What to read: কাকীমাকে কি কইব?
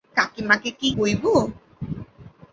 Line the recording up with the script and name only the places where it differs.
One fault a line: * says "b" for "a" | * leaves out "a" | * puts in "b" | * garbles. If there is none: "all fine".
all fine